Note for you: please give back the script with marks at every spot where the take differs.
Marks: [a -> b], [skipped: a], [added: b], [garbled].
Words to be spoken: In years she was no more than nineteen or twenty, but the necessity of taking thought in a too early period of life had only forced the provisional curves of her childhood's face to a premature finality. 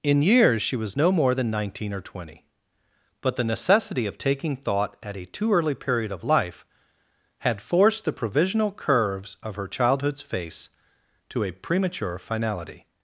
In years she was no more than nineteen or twenty, but the necessity of taking thought [in -> at] a too early period of life had [skipped: only] forced the provisional curves of her childhood's face to a premature finality.